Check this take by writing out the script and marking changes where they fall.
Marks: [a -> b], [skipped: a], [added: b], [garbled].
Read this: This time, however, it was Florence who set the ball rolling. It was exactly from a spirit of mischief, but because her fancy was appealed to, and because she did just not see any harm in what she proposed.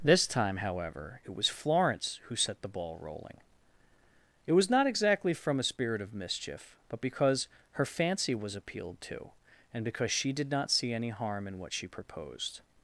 This time, however, it was Florence who set the ball rolling. It was [added: not] exactly from a spirit of mischief, but because her fancy was appealed to, and because she did [skipped: just] not see any harm in what she proposed.